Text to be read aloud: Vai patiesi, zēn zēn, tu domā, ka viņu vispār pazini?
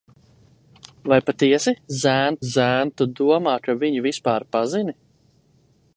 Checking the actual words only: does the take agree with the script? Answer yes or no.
yes